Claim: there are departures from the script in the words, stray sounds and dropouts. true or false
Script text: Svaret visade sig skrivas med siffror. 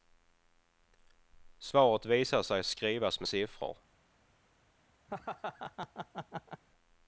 true